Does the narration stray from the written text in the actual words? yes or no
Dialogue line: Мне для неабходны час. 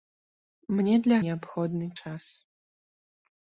no